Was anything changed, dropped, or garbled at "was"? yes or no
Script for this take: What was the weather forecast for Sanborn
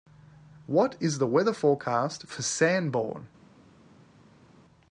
yes